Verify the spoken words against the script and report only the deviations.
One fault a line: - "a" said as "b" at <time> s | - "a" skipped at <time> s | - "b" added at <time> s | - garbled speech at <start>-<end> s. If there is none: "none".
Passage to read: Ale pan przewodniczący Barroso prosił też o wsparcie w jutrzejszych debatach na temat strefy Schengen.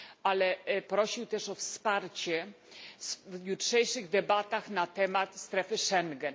- "pan przewodniczący Barroso" skipped at 0.6 s